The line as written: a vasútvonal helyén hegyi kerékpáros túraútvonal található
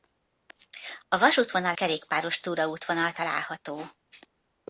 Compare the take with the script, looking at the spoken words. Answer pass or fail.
fail